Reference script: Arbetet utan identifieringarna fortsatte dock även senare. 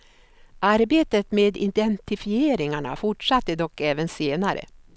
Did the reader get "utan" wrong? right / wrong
wrong